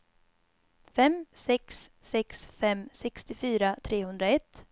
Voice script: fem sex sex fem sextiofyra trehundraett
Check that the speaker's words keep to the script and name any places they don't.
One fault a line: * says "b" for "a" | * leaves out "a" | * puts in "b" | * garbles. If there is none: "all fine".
all fine